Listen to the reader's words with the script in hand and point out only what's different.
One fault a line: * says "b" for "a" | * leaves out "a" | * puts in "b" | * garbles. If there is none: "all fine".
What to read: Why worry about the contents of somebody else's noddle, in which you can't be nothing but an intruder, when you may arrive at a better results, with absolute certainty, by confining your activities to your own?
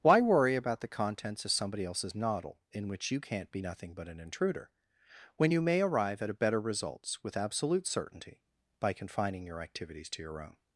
all fine